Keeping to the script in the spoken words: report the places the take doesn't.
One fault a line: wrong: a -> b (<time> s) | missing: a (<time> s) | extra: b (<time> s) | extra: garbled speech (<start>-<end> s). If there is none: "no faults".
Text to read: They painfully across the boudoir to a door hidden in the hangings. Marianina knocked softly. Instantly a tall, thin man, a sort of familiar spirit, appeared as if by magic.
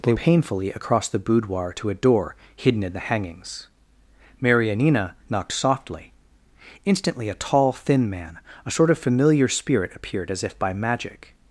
no faults